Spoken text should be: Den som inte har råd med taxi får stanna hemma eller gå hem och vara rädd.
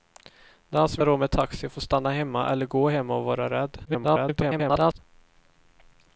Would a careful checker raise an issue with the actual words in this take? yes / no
yes